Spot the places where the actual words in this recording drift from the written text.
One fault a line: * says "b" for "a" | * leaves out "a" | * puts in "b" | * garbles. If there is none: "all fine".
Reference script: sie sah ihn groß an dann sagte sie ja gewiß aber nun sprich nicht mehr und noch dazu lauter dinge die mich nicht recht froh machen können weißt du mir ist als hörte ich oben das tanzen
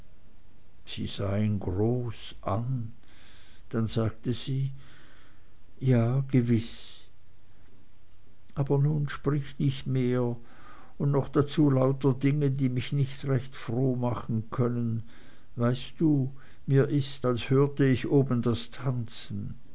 all fine